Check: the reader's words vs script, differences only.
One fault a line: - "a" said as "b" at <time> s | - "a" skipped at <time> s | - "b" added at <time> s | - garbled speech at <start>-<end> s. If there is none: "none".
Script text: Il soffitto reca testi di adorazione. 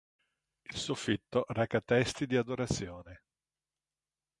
none